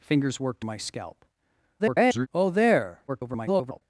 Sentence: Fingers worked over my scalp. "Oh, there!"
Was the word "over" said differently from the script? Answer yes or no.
yes